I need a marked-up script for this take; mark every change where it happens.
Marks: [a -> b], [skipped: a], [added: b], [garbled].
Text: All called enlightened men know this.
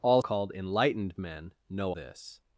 All called enlightened men know this.